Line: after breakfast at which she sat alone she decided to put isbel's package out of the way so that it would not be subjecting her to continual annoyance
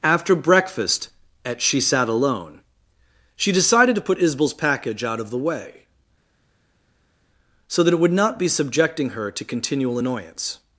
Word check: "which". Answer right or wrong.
wrong